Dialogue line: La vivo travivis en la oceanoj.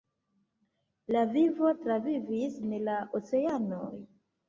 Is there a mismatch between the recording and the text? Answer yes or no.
no